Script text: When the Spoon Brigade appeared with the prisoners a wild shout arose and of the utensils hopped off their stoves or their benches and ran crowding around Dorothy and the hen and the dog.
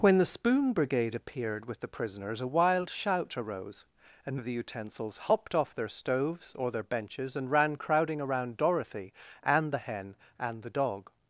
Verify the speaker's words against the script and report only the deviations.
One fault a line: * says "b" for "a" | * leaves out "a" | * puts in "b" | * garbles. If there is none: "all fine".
all fine